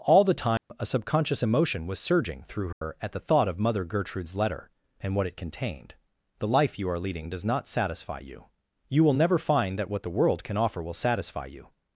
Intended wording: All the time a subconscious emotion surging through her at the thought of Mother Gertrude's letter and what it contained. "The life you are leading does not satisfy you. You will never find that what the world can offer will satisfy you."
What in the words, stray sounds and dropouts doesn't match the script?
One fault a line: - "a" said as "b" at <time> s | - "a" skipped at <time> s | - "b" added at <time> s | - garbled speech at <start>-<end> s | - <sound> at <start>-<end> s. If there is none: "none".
- dropout at 0.6-0.7 s
- "was" added at 1.9 s
- dropout at 2.7-2.8 s